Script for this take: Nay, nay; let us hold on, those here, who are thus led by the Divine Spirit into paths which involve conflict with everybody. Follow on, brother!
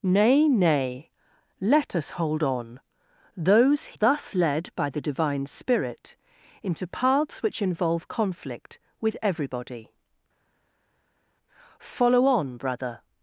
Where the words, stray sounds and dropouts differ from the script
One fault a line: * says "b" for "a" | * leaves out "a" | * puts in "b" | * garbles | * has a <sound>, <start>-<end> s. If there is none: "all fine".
* leaves out "here who are"